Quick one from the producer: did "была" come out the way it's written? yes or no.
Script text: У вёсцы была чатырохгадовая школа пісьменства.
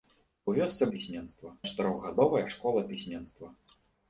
no